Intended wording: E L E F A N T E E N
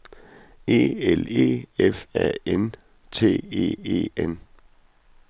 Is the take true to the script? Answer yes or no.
yes